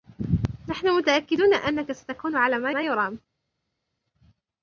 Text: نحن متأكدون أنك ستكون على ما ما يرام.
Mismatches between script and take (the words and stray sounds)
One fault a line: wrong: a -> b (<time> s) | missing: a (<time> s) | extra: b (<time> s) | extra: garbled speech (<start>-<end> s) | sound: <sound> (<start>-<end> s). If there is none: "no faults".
no faults